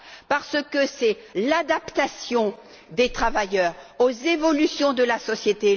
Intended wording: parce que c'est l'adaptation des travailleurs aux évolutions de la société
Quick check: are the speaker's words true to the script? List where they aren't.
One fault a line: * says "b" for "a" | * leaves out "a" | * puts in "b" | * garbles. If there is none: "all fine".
all fine